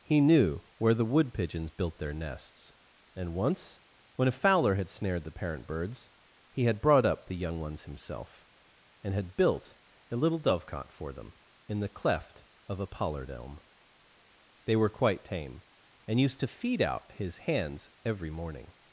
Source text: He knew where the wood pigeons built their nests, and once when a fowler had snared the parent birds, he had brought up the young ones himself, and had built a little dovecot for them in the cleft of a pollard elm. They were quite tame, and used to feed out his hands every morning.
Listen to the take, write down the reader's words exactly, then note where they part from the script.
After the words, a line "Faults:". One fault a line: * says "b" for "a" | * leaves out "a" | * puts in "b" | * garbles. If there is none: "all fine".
He knew where the wood pigeons built their nests, and once when a fowler had snared the parent birds, he had brought up the young ones himself, and had built a little dovecot for them in the cleft of a pollard elm. They were quite tame, and used to feed out his hands every morning.
Faults:
all fine